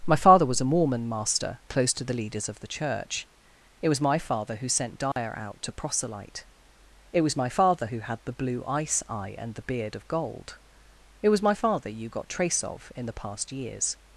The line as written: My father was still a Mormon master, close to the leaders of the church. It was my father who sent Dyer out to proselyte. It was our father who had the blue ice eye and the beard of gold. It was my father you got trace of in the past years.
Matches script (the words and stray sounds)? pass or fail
fail